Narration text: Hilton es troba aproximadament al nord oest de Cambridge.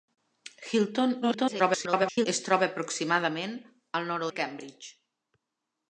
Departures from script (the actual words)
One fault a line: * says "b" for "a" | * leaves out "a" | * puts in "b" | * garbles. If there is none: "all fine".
* garbles
* leaves out "oest"